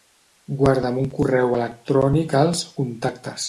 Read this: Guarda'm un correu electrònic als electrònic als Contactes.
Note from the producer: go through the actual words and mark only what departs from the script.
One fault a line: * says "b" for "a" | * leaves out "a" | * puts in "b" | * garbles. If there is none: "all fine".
* leaves out "electrònic als"